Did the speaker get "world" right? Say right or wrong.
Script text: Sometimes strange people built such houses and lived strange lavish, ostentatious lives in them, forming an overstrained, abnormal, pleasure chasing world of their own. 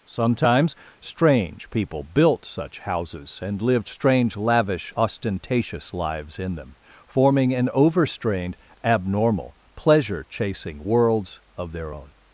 wrong